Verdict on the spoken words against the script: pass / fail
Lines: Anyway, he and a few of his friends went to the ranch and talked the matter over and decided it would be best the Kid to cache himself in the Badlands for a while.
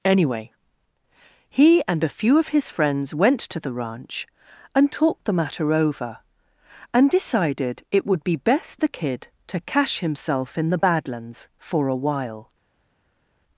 pass